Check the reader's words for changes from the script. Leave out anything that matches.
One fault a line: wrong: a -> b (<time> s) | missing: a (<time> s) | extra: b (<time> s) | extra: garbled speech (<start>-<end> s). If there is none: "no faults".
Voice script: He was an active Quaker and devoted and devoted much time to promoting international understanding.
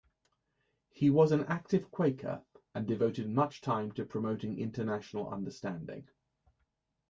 missing: and devoted (3.3 s)